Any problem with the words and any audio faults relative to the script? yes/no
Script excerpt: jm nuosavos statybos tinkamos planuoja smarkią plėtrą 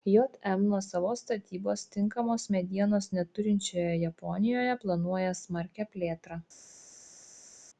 yes